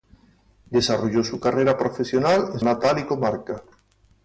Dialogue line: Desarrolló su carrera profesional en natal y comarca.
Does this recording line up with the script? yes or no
yes